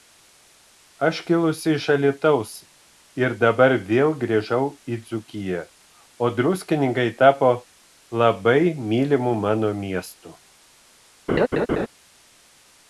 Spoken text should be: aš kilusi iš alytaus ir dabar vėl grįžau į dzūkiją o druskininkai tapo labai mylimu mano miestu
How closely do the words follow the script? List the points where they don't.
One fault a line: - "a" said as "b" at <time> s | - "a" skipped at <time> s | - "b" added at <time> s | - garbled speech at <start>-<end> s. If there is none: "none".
none